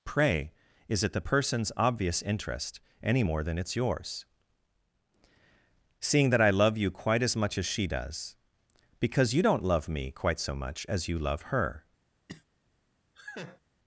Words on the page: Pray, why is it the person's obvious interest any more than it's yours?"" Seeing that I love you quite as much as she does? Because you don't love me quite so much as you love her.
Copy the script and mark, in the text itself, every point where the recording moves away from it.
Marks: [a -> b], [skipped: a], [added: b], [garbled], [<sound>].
Pray, [skipped: why] is it the person's obvious interest any more than it's yours?"" Seeing that I love you quite as much as she does? Because you don't love me quite so much as you love her. [cough] [laugh]